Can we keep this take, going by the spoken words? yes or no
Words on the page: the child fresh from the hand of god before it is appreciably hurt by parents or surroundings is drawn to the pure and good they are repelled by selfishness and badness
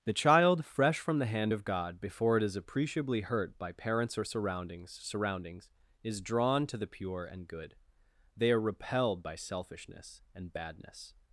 no